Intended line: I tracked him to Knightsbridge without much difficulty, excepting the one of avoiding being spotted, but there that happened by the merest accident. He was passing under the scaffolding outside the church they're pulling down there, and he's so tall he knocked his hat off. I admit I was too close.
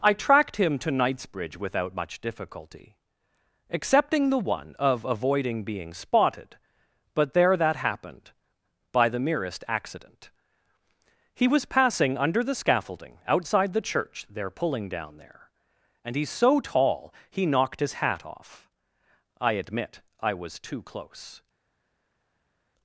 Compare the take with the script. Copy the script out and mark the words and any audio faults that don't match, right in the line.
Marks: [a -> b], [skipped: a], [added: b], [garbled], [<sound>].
I tracked him to Knightsbridge without much difficulty, excepting the one of avoiding being spotted, but there that happened by the merest accident. He was passing under the scaffolding outside the church they're pulling down there, and he's so tall he knocked his hat off. I admit I was too close.